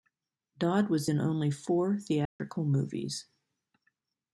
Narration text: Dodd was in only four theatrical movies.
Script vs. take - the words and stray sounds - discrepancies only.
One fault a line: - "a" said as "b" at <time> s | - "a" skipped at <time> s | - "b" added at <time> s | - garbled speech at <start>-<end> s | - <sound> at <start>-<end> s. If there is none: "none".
- dropout at 2.3-2.4 s